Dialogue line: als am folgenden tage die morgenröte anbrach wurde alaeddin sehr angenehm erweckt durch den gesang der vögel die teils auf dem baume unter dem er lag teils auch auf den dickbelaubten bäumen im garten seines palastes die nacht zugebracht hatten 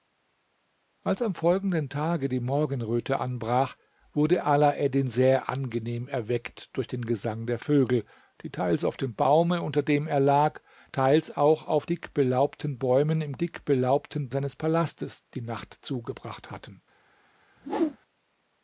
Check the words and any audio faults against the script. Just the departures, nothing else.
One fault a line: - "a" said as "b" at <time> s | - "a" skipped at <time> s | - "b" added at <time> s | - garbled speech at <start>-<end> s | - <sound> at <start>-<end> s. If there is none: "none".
- "den" skipped at 11.8 s
- "garten" said as "dickbelaubten" at 13.4 s
- whoosh at 17.6-18.0 s